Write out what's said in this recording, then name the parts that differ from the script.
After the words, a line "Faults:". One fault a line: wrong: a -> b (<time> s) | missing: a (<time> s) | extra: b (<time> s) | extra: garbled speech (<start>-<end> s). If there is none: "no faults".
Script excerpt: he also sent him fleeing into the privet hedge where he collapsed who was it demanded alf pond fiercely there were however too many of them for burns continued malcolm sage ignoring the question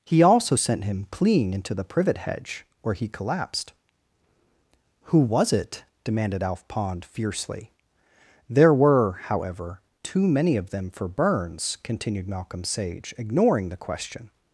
he also sent him fleeing into the privet hedge where he collapsed who was it demanded alf pond fiercely there were however too many of them for burns continued malcolm sage ignoring the question
Faults:
no faults